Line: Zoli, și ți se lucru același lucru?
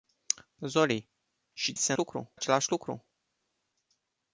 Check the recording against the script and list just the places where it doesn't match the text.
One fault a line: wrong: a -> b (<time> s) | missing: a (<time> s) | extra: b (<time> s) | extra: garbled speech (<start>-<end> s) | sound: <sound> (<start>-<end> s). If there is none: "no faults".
no faults